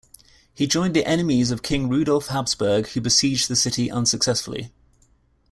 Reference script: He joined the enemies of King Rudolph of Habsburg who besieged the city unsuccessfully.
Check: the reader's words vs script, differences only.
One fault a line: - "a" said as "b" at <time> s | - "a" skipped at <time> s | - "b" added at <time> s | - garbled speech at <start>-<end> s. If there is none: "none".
- "of" skipped at 2.3 s